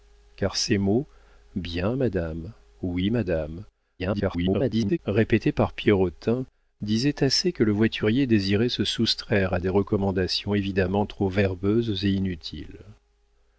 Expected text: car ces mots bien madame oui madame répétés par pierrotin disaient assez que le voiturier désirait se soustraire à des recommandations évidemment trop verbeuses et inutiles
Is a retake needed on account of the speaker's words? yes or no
yes